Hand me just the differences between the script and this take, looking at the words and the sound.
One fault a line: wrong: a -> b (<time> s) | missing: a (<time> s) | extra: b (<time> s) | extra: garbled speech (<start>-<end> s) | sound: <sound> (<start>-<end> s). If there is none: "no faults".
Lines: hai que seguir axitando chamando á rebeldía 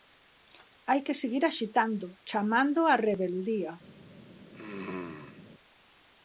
sound: throat clearing (4.5-5.4 s)